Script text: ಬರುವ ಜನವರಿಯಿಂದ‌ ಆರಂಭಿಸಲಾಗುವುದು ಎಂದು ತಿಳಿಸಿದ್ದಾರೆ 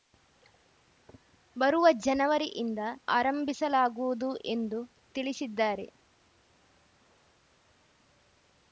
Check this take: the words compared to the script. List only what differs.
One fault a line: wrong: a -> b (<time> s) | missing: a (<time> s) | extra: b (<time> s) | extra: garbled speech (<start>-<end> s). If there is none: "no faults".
no faults